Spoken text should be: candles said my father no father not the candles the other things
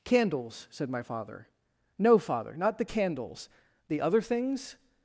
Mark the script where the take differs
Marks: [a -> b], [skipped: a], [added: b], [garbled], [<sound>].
candles said my father no father not the candles the other things